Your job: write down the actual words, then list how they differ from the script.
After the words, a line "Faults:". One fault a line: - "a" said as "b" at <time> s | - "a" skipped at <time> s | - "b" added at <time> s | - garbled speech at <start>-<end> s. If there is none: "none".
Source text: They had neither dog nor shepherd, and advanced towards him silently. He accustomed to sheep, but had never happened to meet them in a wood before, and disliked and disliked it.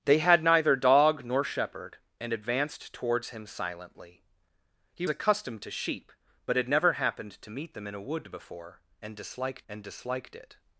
They had neither dog nor shepherd, and advanced towards him silently. He accustomed to sheep, but had never happened to meet them in a wood before, and disliked and disliked it.
Faults:
none